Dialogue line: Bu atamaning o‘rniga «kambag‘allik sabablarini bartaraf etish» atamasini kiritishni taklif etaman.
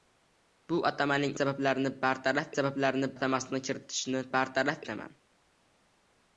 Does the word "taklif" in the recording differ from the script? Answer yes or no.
yes